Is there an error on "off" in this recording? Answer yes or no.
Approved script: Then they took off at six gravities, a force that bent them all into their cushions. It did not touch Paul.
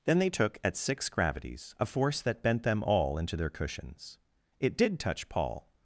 yes